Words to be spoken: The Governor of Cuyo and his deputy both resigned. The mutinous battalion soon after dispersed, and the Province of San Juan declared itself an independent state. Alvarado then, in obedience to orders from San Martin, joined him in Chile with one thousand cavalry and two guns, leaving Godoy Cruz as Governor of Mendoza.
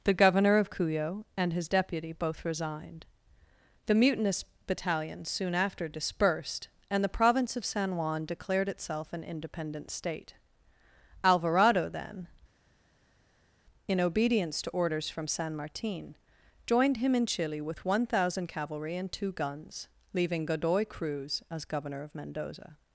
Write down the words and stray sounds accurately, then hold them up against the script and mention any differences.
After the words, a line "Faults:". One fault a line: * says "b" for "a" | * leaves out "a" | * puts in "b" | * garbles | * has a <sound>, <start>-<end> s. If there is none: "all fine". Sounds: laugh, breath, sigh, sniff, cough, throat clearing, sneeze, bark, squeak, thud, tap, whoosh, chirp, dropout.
The Governor of Cuyo and his deputy both resigned. The mutinous battalion soon after dispersed, and the Province of San Juan declared itself an independent state. Alvarado then, in obedience to orders from San Martin, joined him in Chile with one thousand cavalry and two guns, leaving Godoy Cruz as Governor of Mendoza.
Faults:
all fine